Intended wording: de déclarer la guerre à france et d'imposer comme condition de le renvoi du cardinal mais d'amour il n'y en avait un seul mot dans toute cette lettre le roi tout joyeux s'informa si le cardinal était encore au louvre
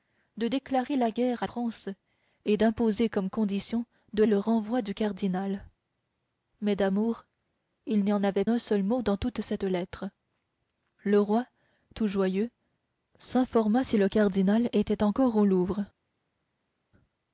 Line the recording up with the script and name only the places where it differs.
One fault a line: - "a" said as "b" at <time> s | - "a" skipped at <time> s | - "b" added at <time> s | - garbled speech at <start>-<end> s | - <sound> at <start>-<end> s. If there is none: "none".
none